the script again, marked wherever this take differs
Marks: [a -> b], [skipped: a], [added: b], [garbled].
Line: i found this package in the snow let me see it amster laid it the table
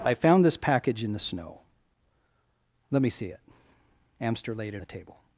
i found this package in the snow let me see it amster laid it the table